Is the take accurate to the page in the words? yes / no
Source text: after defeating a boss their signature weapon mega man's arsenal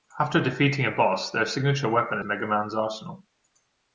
yes